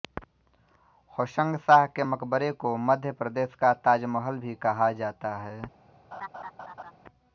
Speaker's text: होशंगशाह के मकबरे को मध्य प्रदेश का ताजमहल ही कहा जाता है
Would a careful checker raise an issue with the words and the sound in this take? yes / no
yes